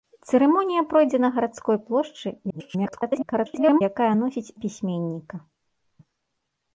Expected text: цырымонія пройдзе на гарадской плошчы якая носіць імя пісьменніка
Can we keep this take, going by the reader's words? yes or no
no